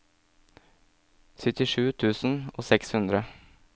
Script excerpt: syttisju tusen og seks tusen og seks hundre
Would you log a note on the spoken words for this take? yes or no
yes